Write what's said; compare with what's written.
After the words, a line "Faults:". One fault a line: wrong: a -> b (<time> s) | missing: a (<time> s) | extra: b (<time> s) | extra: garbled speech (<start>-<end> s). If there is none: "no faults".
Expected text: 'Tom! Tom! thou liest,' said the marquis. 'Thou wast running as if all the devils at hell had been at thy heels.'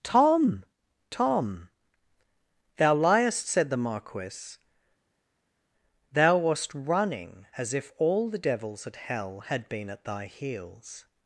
'Tom! Tom! thou liest,' said the marquis. 'Thou wast running as if all the devils at hell had been at thy heels.'
Faults:
no faults